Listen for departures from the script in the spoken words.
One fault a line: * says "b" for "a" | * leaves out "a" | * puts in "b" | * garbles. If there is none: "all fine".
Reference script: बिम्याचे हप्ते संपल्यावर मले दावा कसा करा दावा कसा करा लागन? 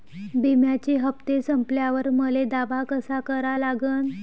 * leaves out "दावा कसा करा"